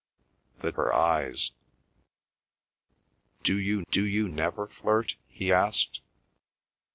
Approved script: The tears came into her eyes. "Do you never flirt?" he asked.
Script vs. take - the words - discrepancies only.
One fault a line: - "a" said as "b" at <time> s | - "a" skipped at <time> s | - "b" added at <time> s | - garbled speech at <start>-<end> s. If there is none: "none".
- "tears came into her eyes" said as "her eyes Do you" at 0.7 s